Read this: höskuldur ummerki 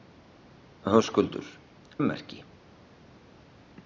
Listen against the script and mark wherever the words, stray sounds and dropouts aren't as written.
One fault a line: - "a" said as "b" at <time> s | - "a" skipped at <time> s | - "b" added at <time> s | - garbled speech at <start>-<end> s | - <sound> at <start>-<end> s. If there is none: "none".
none